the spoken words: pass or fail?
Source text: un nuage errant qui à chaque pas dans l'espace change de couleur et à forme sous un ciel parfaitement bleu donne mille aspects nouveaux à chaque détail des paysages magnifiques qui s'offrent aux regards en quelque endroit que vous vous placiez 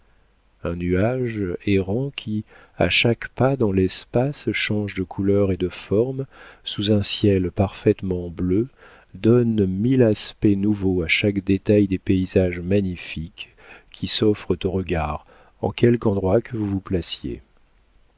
fail